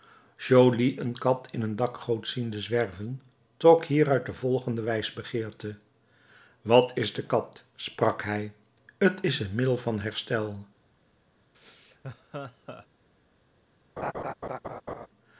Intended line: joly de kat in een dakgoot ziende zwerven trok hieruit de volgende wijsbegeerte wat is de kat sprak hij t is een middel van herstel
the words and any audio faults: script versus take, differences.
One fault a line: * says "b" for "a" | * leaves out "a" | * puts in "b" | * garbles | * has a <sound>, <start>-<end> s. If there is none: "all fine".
* says "een" for "de"
* has a laugh, 11.5-12.9 s
* has a laugh, 14.0-15.1 s